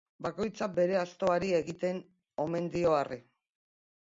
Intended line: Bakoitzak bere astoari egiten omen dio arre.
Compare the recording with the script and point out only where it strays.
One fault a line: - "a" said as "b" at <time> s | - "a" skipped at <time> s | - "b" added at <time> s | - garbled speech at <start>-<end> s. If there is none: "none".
none